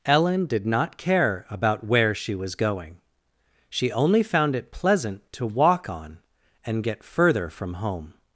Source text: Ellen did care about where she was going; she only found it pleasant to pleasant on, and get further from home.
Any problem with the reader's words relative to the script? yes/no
yes